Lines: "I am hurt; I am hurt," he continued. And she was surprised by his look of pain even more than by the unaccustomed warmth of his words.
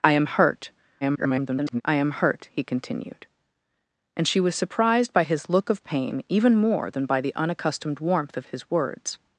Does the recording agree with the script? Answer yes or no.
no